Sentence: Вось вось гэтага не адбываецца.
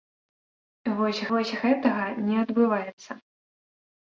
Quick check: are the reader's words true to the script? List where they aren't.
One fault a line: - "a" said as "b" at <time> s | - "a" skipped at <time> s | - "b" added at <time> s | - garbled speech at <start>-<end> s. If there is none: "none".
none